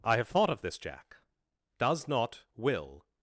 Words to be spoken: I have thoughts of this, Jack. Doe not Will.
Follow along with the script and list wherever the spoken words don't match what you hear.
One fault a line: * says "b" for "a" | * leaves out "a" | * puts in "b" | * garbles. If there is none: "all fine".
* says "thought" for "thoughts"
* says "Does" for "Doe"